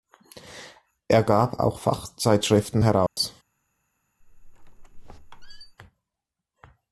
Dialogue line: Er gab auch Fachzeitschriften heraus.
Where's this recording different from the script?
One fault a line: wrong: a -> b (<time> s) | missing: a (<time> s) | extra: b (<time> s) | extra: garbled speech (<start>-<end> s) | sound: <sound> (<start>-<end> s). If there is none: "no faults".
sound: dropout (3.1-3.2 s)
sound: squeak (4.2-5.8 s)